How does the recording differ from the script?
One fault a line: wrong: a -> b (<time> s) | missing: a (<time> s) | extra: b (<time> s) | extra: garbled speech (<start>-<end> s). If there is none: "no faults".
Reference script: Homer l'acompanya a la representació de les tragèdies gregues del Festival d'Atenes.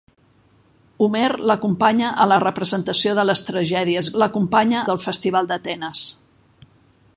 wrong: gregues -> l'acompanya (4.2 s)